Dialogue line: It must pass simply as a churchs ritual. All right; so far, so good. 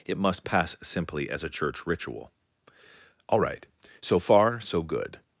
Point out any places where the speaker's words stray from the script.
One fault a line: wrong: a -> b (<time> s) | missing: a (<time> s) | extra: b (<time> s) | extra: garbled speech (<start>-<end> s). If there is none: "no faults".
wrong: churchs -> church (1.5 s)